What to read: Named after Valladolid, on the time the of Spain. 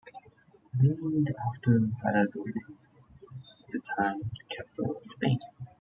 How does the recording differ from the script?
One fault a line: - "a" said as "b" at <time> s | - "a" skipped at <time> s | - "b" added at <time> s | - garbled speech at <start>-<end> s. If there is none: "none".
- "on" said as "at" at 2.6 s
- "capital" added at 4.5 s